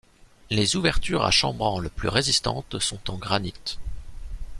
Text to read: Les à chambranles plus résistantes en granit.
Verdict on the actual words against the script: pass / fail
fail